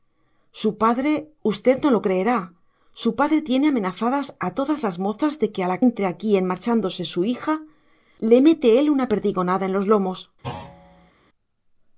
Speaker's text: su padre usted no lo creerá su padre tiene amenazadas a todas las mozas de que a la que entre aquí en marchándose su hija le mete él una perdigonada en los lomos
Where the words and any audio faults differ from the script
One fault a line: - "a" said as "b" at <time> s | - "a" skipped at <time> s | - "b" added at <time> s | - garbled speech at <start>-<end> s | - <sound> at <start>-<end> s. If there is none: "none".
- "que" skipped at 5.8 s
- thud at 10.4-11.1 s